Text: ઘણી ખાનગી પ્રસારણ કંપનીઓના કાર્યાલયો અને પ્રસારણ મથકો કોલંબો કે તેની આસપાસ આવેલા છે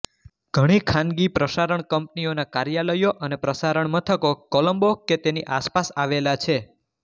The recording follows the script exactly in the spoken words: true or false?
true